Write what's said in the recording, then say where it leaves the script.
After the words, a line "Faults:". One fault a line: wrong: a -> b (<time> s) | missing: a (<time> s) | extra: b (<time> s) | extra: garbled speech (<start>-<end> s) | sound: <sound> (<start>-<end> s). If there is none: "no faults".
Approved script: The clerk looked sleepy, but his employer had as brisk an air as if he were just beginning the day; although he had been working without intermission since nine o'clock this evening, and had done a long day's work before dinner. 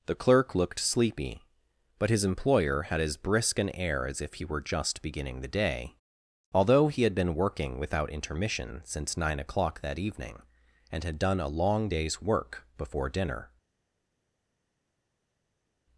The clerk looked sleepy, but his employer had as brisk an air as if he were just beginning the day; although he had been working without intermission since nine o'clock that evening, and had done a long day's work before dinner.
Faults:
wrong: this -> that (9.8 s)